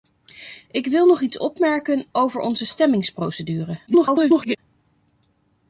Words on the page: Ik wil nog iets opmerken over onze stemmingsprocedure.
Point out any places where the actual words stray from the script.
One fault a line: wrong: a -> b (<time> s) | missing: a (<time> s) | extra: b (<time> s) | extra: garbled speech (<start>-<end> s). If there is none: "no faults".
extra: garbled speech (3.9-4.6 s)